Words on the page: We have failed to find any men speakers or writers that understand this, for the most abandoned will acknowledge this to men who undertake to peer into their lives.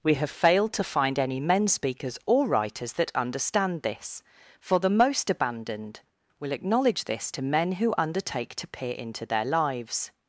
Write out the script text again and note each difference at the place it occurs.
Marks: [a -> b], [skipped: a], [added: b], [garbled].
We have failed to find any men speakers or writers that understand this, for the most abandoned will acknowledge this to men who undertake to peer into their lives.